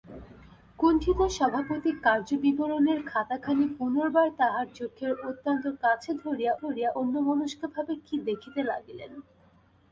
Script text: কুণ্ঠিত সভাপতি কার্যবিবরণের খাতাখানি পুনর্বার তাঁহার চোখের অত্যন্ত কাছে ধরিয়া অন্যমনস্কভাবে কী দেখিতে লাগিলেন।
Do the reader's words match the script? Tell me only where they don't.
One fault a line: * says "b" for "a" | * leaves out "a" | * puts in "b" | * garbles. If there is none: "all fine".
* puts in "ধরিয়া"